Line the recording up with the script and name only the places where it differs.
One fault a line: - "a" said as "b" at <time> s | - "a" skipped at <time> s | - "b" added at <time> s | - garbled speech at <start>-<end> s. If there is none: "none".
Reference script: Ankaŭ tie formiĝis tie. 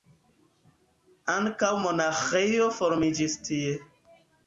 - "tie" said as "monaĥejo" at 1.8 s